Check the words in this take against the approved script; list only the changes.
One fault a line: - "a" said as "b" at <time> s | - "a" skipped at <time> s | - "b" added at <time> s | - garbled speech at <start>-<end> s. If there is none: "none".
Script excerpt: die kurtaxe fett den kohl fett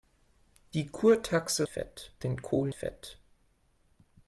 none